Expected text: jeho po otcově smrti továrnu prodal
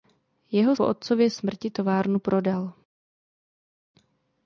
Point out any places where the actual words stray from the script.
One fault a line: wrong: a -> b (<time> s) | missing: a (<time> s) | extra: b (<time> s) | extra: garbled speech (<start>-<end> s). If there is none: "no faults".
no faults